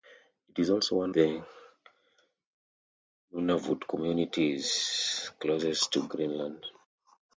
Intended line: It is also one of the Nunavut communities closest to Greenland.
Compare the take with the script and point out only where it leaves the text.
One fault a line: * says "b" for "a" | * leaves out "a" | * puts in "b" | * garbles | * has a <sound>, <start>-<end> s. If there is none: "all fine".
* leaves out "of"